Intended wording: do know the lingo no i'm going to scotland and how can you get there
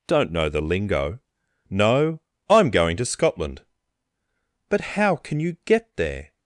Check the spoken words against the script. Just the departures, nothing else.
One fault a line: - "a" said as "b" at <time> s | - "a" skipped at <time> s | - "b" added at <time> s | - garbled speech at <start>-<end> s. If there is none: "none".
- "do" said as "don't" at 0.1 s
- "and" said as "but" at 4.7 s